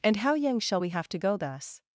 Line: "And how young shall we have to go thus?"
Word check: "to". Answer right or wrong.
right